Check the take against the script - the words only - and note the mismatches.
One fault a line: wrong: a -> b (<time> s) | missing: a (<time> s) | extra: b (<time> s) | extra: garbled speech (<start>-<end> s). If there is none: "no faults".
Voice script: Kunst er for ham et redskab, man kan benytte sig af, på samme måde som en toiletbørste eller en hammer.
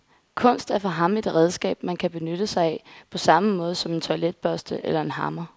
no faults